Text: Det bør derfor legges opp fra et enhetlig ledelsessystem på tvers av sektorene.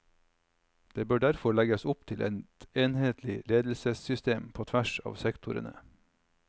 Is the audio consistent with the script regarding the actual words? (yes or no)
no